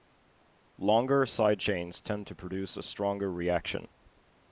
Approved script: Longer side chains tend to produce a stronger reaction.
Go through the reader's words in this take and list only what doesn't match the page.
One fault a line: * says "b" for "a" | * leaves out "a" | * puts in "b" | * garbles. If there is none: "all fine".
all fine